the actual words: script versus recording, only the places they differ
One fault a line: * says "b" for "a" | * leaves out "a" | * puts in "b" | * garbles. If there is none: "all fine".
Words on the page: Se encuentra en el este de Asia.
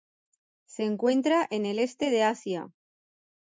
all fine